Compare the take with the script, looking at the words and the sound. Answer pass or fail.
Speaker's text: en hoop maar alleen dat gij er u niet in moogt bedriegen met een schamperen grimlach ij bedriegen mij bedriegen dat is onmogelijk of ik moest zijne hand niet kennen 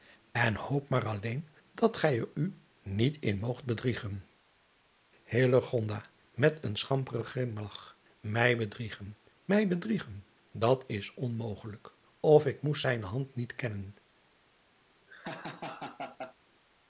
fail